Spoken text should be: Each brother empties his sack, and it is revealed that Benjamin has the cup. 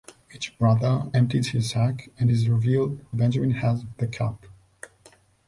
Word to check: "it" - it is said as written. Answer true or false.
false